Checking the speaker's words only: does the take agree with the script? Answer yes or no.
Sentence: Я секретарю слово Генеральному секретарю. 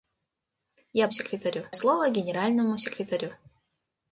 yes